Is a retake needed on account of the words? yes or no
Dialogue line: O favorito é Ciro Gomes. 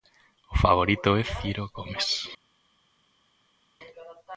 no